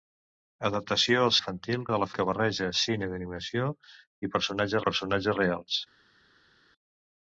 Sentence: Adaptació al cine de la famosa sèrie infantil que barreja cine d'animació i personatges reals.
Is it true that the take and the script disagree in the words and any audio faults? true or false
true